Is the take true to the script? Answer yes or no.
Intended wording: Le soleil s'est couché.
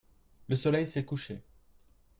yes